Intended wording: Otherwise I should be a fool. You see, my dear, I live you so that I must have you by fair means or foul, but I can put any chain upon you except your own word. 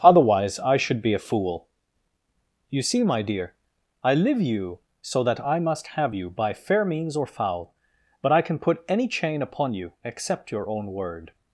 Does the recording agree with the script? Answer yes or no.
yes